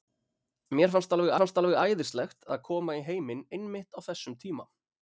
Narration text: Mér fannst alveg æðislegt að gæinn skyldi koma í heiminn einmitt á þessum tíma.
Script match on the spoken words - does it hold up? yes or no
no